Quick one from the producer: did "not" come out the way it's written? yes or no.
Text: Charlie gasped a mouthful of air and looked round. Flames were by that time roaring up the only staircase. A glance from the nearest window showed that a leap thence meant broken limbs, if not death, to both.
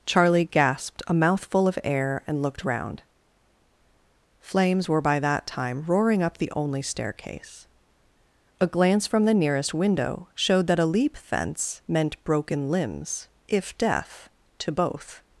no